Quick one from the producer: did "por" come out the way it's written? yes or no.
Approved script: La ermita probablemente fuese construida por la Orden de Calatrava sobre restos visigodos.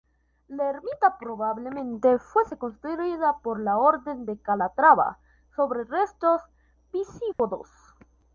yes